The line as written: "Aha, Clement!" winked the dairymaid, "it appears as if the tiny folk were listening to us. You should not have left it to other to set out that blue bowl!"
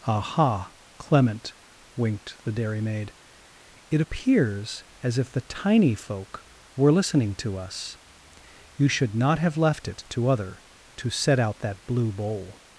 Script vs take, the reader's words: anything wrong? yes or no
no